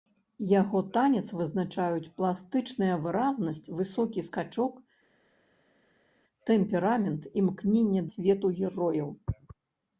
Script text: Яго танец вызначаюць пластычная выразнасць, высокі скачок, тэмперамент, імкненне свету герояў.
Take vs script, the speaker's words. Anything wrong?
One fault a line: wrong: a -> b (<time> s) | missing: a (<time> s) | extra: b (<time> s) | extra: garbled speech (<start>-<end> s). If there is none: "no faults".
no faults